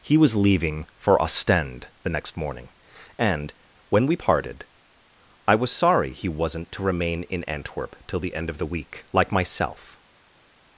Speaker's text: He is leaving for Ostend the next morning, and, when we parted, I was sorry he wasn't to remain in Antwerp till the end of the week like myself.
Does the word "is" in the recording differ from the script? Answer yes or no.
yes